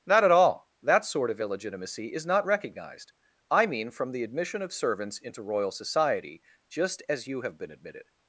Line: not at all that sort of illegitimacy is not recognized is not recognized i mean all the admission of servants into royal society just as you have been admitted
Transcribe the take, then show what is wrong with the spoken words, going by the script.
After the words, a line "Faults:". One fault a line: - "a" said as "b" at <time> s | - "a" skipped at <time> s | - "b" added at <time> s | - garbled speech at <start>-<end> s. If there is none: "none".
not at all that sort of illegitimacy is not recognized i mean from the admission of servants into royal society just as you have been admitted
Faults:
- "is not recognized" skipped at 3.1 s
- "all" said as "from" at 3.9 s